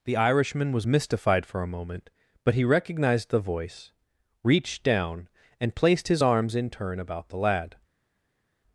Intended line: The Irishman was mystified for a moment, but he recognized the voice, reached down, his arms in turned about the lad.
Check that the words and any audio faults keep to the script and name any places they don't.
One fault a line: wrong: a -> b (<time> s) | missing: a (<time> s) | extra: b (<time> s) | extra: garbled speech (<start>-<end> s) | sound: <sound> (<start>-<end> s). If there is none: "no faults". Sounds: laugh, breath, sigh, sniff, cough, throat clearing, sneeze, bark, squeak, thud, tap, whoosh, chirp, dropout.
extra: and placed (5.6 s)
wrong: turned -> turn (6.7 s)